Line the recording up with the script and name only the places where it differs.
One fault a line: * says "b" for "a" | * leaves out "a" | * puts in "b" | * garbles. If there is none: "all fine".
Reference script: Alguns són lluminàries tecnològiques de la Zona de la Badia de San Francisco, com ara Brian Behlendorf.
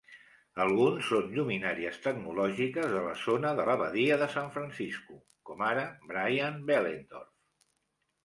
all fine